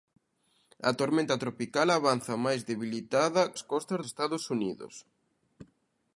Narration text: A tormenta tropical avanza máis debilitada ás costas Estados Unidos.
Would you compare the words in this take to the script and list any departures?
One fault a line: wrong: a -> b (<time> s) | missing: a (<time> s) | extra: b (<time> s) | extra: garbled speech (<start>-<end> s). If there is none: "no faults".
no faults